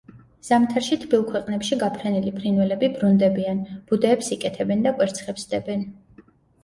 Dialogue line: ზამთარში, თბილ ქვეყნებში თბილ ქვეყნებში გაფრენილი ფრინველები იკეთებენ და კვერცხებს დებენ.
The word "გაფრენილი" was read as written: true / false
false